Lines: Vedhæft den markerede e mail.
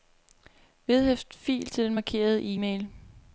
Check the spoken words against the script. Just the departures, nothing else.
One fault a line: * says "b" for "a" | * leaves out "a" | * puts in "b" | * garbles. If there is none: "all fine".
* puts in "fil til"